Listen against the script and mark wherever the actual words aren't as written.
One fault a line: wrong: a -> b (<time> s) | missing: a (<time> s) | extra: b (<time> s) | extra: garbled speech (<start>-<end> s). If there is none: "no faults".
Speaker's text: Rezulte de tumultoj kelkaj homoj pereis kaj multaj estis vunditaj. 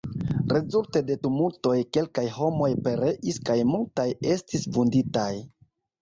no faults